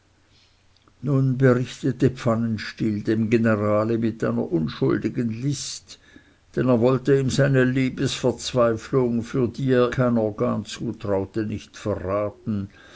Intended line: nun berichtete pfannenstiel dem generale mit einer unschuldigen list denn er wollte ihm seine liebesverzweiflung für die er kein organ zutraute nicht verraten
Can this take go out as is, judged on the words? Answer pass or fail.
pass